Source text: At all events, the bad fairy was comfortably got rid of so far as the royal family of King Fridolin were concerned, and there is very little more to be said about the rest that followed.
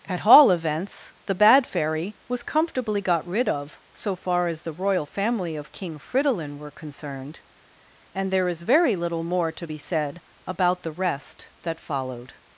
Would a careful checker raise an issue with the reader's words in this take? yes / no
no